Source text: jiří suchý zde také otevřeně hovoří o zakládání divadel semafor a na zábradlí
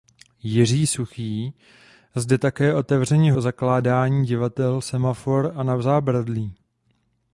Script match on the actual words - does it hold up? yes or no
no